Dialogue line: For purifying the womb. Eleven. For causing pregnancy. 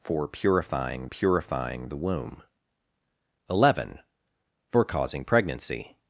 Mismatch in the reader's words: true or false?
true